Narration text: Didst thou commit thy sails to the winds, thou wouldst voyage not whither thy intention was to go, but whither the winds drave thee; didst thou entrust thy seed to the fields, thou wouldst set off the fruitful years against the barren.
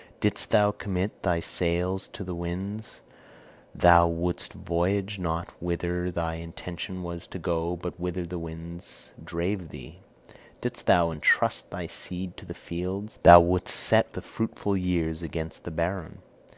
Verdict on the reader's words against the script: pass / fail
fail